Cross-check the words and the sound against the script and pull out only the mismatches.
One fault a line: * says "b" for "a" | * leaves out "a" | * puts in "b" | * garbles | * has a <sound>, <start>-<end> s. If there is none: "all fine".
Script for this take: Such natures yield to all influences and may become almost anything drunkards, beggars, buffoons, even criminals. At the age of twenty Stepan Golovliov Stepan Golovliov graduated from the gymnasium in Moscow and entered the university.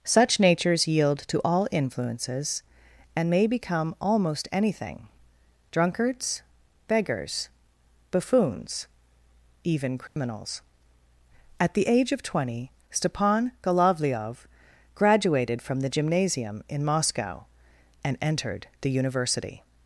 * has a dropout, 10.1-10.2 s
* leaves out "Stepan Golovliov"